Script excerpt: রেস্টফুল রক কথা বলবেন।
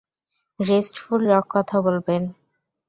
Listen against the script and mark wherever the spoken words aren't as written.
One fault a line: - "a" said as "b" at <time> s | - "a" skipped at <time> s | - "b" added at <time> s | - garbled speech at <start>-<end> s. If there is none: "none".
none